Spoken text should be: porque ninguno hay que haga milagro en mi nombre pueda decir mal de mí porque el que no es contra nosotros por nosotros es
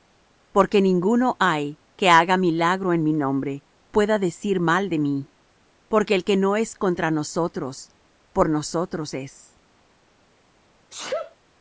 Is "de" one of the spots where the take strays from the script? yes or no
no